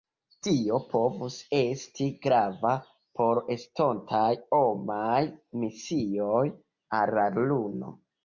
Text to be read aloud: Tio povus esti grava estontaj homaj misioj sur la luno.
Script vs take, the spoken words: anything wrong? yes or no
yes